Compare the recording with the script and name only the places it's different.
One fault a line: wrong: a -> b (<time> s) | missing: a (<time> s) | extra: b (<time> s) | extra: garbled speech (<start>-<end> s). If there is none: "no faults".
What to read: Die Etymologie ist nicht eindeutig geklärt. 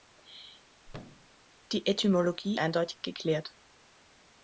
missing: ist nicht (2.6 s)